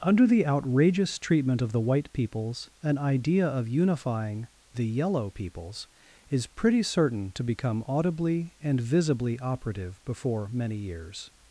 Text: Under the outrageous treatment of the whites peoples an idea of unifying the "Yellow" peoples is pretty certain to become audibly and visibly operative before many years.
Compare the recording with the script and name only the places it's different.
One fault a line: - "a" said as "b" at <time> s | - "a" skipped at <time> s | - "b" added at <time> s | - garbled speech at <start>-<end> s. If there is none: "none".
- "whites" said as "white" at 1.8 s